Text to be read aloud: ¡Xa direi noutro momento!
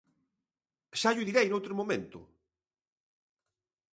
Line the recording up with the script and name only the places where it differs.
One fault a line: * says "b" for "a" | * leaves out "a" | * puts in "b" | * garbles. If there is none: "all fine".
* puts in "llo"